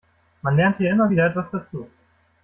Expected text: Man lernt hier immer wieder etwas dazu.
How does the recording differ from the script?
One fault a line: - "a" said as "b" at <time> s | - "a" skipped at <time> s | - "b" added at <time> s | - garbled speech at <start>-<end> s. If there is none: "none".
none